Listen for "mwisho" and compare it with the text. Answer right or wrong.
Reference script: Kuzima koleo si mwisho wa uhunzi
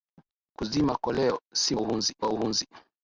wrong